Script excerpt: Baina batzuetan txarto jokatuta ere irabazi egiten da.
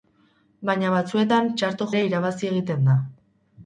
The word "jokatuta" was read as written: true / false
false